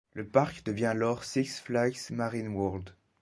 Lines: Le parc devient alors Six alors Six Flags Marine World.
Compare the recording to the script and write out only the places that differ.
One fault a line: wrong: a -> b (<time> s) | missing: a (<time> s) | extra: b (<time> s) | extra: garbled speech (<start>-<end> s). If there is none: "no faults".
missing: alors Six (1.6 s)